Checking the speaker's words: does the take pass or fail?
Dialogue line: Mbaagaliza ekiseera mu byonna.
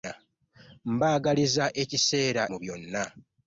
pass